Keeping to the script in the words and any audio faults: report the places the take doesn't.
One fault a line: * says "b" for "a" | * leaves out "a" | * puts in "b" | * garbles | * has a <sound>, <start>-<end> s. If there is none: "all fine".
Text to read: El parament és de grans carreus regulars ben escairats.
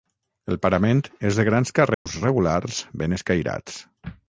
* has a dropout, 1.9-2.1 s